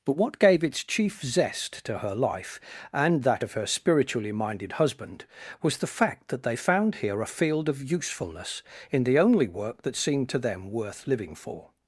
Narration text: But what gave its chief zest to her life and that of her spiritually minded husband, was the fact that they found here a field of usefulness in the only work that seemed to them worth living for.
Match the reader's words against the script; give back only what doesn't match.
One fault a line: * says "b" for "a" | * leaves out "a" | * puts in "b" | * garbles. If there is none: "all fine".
all fine